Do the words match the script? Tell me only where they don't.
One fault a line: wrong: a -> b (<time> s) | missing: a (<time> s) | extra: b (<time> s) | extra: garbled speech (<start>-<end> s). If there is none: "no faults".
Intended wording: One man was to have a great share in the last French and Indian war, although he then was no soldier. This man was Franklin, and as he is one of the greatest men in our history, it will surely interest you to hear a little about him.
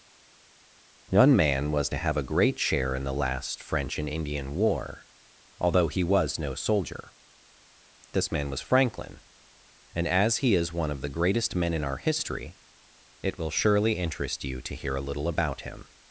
missing: then (6.0 s)